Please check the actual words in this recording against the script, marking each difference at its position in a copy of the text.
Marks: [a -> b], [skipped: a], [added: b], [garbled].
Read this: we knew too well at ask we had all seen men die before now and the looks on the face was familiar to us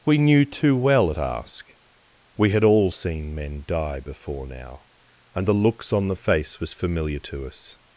we knew too well at ask we had all seen men die before now and the looks on the face was familiar to us